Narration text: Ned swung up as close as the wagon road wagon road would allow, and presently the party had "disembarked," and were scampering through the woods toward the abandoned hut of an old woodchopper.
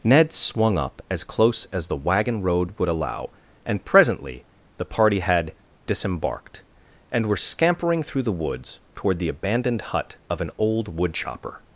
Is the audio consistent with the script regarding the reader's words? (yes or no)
no